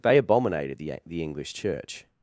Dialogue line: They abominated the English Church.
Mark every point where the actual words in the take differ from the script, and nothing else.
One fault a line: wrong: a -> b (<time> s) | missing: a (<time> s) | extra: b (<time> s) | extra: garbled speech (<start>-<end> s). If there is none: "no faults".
extra: the (1.0 s)